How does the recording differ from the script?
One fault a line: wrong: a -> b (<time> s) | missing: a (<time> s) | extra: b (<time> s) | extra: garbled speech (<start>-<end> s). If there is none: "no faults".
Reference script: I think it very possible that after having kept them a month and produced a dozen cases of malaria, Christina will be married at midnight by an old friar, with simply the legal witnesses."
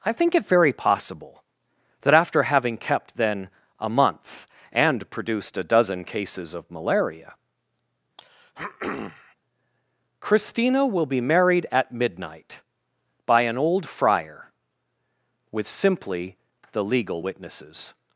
wrong: them -> then (3.2 s)